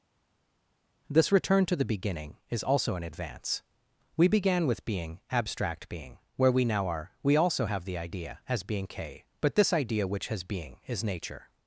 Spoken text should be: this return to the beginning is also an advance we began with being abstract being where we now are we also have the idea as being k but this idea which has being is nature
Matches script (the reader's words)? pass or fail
pass